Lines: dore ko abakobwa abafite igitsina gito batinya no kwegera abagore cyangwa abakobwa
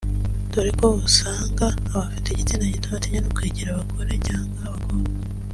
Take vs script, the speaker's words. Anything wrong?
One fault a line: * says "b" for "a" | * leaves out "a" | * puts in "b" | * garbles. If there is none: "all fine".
* says "usanga" for "abakobwa"